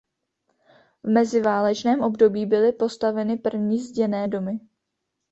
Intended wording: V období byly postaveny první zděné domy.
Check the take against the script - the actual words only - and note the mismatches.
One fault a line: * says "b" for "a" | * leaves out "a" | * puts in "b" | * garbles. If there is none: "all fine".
* puts in "meziválečném"